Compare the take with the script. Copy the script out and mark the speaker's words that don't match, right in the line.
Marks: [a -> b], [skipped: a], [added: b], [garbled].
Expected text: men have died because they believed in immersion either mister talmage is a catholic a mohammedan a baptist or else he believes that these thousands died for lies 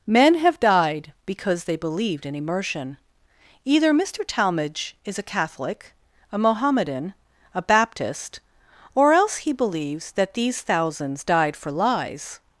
men have died because they believed in immersion either mister talmage is a catholic a mohammedan a baptist or else he believes that these thousands died for lies